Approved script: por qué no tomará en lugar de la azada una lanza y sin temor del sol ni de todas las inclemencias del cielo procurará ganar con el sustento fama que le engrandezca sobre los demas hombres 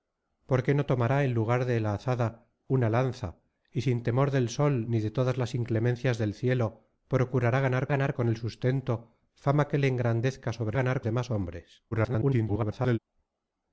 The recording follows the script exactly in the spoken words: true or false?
false